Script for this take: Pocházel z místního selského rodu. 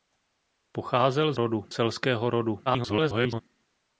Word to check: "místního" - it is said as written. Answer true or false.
false